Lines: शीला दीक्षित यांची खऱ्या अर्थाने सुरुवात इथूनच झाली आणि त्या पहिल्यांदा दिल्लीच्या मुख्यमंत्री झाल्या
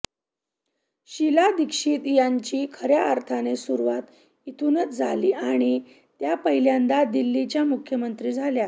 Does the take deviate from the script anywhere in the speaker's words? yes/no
no